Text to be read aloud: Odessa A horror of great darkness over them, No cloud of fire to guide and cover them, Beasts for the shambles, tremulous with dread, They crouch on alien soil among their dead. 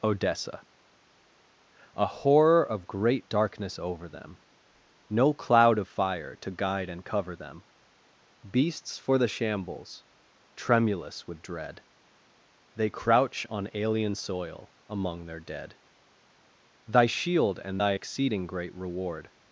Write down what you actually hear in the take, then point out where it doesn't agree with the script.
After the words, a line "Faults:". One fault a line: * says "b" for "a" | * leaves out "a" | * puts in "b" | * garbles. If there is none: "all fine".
Odessa A horror of great darkness over them, No cloud of fire to guide and cover them, Beasts for the shambles, tremulous with dread, They crouch on alien soil among their dead. "Thy shield and thy exceeding great reward
Faults:
* puts in "Thy shield and thy exceeding great reward"